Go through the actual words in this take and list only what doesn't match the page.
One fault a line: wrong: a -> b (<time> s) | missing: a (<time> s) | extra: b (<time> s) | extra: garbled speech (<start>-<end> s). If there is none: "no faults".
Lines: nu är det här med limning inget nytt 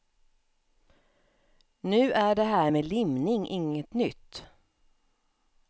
no faults